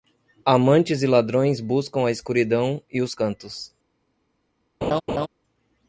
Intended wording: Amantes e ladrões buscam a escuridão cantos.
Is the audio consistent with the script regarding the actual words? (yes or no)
no